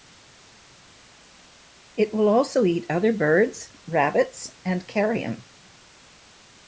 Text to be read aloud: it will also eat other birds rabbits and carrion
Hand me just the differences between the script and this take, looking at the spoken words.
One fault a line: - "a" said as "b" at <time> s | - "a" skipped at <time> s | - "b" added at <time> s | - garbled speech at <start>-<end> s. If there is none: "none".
none